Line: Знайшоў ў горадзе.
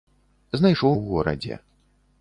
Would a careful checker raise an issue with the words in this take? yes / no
no